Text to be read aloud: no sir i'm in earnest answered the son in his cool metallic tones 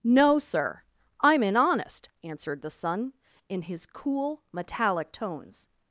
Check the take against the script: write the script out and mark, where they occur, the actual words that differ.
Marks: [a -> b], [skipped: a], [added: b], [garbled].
no sir i'm in [earnest -> honest] answered the son in his cool metallic tones